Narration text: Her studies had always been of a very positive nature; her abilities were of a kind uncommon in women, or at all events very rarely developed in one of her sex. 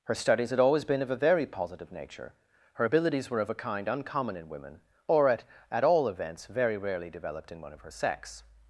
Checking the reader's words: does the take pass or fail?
fail